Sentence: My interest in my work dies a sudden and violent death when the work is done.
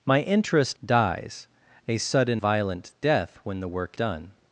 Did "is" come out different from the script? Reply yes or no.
yes